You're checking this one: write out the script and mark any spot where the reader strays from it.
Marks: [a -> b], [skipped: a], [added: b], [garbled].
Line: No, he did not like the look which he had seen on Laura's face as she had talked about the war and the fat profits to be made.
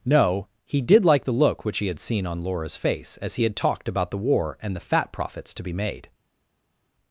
No, he did [skipped: not] like the look which he had seen on Laura's face as [she -> he] had talked about the war and the fat profits to be made.